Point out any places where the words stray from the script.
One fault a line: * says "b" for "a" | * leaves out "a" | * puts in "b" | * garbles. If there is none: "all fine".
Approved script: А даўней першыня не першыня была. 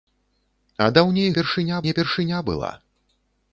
all fine